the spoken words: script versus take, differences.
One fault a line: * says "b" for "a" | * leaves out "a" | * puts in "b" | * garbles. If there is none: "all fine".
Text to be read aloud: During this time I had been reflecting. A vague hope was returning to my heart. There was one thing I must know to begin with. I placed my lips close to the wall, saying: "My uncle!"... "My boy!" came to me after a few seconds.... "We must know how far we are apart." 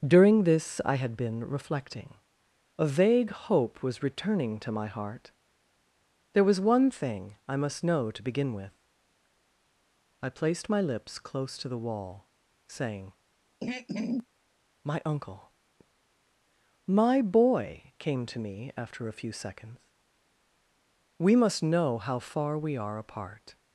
* leaves out "time"